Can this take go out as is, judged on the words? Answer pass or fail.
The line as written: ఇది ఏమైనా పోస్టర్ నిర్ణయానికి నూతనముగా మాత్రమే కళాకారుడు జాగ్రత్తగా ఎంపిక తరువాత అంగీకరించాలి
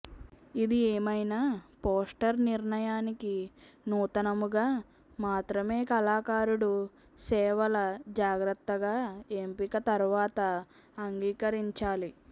fail